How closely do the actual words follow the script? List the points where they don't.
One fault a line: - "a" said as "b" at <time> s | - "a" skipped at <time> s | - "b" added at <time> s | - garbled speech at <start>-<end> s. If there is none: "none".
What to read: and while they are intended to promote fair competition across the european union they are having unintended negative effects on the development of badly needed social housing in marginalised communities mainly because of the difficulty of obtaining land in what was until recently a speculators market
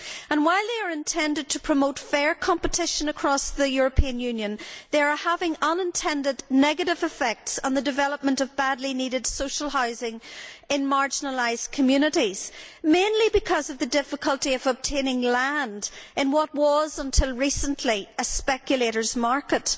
none